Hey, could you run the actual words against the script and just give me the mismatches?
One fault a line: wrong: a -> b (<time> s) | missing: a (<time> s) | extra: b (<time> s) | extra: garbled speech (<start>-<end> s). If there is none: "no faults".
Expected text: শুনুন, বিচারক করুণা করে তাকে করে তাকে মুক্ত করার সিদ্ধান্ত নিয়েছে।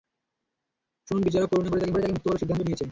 no faults